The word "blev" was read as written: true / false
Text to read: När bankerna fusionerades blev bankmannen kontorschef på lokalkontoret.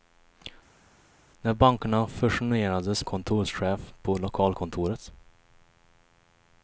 false